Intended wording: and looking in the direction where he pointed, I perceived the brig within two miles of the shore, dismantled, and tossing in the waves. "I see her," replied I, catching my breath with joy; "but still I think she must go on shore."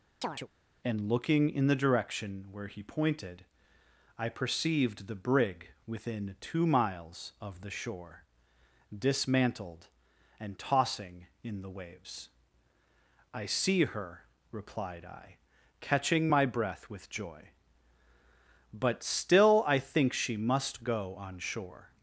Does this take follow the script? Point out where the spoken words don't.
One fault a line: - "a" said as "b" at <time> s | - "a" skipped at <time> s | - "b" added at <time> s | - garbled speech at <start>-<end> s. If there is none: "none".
none